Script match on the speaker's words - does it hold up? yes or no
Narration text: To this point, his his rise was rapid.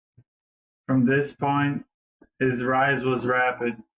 no